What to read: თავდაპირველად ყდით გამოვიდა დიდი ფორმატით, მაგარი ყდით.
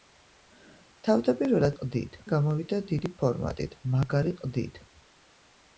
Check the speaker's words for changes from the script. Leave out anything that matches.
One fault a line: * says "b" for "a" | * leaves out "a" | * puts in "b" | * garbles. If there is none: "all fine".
all fine